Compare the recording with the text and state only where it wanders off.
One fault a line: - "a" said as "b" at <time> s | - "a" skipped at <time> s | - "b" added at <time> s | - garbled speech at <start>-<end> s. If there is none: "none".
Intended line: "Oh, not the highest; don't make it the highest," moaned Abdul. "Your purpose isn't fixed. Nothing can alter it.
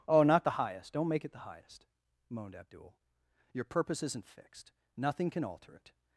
none